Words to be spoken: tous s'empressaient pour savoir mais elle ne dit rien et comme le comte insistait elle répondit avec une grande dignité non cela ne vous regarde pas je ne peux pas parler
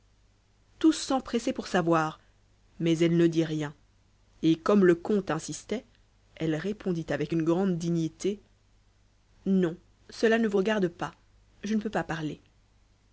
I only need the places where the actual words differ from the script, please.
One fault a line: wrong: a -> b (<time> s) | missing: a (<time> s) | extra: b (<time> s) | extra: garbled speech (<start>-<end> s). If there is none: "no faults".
no faults